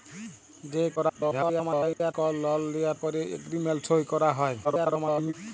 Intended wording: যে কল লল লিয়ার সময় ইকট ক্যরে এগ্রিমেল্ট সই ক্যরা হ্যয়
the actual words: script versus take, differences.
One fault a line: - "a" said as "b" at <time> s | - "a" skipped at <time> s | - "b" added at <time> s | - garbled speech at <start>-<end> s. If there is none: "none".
- garbled speech at 1.0-2.1 s
- "সময় ইকট" skipped at 3.0 s
- garbled speech at 4.6-5.3 s